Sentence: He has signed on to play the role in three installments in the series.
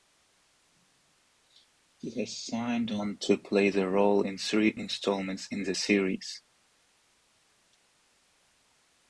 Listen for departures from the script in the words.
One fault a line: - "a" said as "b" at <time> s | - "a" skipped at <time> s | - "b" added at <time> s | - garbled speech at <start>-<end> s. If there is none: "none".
none